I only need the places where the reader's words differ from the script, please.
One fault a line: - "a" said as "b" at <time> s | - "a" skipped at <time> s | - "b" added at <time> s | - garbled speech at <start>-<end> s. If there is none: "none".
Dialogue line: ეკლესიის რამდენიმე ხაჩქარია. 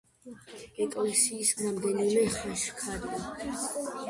none